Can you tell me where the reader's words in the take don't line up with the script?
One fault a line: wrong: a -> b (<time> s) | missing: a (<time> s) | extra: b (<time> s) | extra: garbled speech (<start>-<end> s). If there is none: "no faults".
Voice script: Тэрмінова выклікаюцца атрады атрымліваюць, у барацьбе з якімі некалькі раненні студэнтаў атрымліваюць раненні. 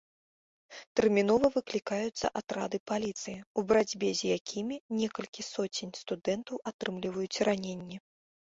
wrong: атрымліваюць -> паліцыі (2.9 s)
wrong: раненні -> соцень (5.5 s)